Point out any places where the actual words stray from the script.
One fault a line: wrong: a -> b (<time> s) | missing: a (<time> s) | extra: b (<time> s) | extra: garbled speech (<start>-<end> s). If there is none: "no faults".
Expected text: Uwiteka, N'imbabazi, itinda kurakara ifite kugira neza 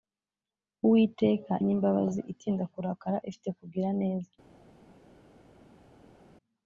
no faults